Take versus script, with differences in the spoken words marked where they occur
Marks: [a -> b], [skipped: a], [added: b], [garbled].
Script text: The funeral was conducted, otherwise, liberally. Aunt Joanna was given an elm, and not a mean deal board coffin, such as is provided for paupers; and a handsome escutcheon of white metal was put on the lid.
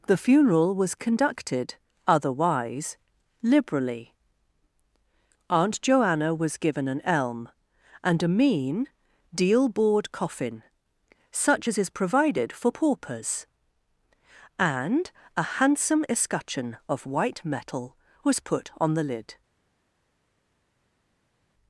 The funeral was conducted, otherwise, liberally. Aunt Joanna was given an elm, and [skipped: not] a mean deal board coffin, such as is provided for paupers; and a handsome escutcheon of white metal was put on the lid.